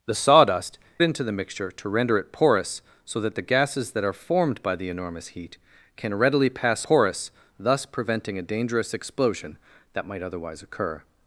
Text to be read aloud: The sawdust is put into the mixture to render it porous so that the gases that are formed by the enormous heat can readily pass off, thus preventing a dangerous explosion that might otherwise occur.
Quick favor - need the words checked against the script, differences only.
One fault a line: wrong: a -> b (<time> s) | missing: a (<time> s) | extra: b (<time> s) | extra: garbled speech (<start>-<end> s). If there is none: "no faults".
missing: is put (0.8 s)
wrong: off -> porous (6.8 s)